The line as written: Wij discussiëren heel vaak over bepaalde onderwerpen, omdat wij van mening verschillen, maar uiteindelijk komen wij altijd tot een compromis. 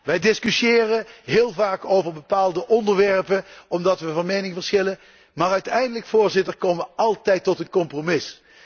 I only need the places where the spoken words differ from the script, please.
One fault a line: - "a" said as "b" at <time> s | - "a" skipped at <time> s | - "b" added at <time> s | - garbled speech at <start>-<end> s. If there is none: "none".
none